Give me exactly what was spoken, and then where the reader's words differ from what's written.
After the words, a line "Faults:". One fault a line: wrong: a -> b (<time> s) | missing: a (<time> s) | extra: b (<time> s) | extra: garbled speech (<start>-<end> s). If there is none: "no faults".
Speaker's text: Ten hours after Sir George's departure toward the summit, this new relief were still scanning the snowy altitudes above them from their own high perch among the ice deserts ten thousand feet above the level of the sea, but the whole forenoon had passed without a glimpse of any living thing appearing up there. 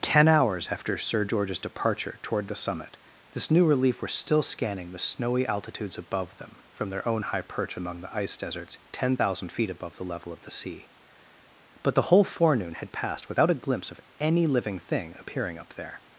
Ten hours after Sir George's departure toward the summit, this new relief were still scanning the snowy altitudes above them from their own high perch among the ice deserts ten thousand feet above the level of the sea, but the whole forenoon had passed without a glimpse of any living thing appearing up there.
Faults:
no faults